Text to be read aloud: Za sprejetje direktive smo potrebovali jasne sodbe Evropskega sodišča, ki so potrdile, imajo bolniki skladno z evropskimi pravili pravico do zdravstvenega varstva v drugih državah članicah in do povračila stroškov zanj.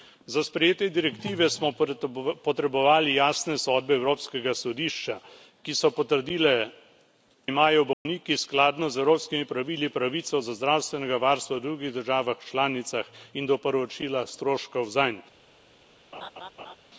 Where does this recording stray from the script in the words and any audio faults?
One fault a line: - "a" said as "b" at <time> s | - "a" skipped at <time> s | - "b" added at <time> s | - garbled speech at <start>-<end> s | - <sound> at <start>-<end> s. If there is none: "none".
- dropout at 7.9-8.1 s
- laugh at 16.1-16.8 s